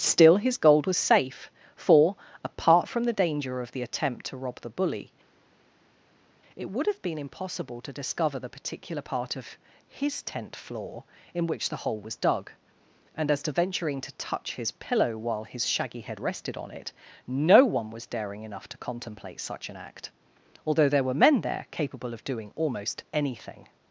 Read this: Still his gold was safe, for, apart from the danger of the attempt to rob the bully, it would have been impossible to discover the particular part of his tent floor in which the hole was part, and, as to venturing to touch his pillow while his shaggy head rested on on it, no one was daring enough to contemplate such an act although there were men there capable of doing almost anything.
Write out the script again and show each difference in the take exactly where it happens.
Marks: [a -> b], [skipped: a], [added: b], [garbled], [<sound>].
Still his gold was safe, for, apart from the danger of the attempt to rob the bully, it would have been impossible to discover the particular part of his tent floor in which the hole was [part, -> dug] and, as to venturing to touch his pillow while his shaggy head rested on [skipped: on] it, no one was daring enough to contemplate such an act although there were men there capable of doing almost anything.